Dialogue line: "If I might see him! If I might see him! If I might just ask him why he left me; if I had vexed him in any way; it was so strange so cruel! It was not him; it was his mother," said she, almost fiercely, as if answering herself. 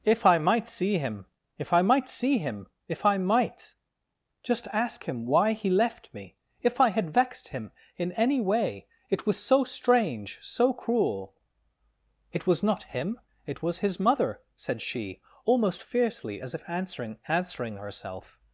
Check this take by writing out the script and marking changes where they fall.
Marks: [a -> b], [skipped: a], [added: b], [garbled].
"If I might see him! If I might see him! If I might just ask him why he left me; if I had vexed him in any way; it was so strange so cruel! It was not him; it was his mother," said she, almost fiercely, as if answering [added: answering] herself.